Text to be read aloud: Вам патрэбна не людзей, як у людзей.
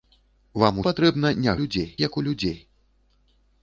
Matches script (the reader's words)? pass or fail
pass